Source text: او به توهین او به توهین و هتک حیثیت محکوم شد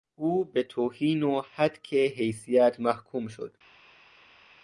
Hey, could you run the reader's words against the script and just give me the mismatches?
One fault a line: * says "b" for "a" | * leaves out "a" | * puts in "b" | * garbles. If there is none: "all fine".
* leaves out "او به توهین"